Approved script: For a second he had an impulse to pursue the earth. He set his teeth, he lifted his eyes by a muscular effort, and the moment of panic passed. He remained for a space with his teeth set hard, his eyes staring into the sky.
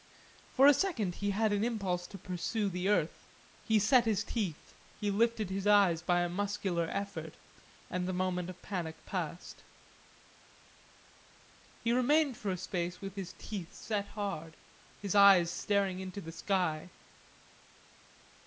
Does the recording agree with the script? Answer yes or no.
yes